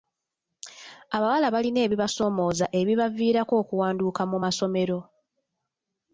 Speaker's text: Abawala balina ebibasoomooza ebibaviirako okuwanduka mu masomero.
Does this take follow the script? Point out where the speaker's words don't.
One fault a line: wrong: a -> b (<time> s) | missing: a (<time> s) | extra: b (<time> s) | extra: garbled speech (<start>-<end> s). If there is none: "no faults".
no faults